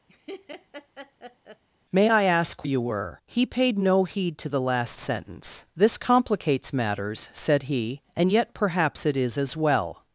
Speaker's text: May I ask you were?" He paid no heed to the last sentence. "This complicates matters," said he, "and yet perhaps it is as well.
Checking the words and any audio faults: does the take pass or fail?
fail